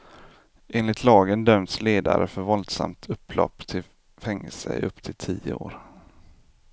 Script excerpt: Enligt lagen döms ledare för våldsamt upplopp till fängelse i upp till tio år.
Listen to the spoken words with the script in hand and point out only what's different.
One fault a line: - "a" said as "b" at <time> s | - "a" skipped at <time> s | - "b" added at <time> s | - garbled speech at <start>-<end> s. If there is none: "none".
none